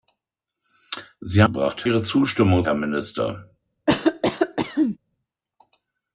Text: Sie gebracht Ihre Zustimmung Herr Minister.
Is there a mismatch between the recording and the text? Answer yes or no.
no